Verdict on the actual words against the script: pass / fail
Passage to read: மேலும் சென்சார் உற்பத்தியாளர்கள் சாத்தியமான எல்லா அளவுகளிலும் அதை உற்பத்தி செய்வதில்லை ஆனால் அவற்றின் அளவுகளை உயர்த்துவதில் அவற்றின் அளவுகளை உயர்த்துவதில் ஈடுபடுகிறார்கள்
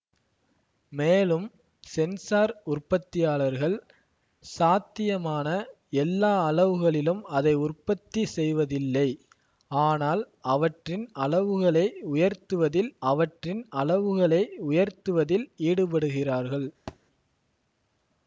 pass